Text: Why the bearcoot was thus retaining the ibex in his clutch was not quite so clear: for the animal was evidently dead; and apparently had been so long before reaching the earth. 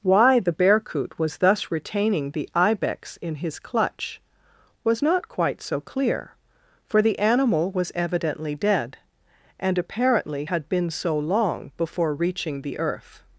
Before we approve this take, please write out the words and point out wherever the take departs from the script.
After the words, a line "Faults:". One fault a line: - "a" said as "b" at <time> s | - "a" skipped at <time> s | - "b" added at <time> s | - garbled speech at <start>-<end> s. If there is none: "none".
Why the bearcoot was thus retaining the ibex in his clutch was not quite so clear: for the animal was evidently dead; and apparently had been so long before reaching the earth.
Faults:
none